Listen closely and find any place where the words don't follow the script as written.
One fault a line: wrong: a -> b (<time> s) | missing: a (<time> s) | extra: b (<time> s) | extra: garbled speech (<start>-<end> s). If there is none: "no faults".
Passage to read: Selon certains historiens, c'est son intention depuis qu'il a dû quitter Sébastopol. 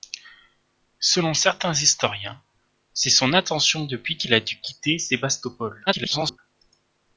extra: garbled speech (5.9-6.4 s)